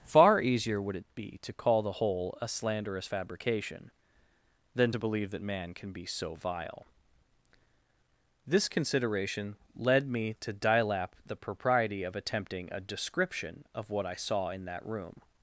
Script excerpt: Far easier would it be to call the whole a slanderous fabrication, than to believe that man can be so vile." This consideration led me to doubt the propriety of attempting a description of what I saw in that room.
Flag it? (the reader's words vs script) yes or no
yes